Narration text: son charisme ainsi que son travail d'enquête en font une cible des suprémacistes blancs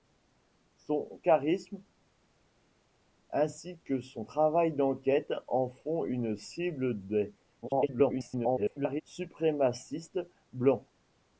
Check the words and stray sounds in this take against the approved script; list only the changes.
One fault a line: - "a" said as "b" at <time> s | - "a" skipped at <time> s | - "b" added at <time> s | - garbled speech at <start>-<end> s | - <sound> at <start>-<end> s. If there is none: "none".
- garbled speech at 7.6-9.0 s